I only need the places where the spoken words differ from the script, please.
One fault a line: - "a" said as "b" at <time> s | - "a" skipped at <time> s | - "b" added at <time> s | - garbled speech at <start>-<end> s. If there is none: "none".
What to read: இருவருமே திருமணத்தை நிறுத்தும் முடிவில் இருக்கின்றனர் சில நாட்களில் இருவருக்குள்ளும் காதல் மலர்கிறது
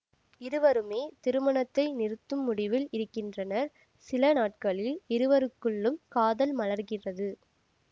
none